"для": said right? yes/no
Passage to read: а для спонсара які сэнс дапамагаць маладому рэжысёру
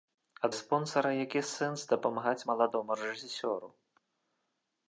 no